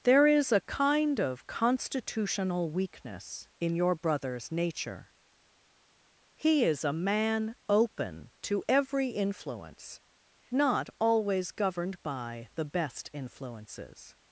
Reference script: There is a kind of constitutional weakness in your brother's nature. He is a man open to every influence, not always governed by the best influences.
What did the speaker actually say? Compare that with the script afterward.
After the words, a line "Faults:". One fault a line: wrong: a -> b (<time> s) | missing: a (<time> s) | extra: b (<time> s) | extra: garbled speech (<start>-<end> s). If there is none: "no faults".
There is a kind of constitutional weakness in your brother's nature. He is a man open to every influence, not always governed by the best influences.
Faults:
no faults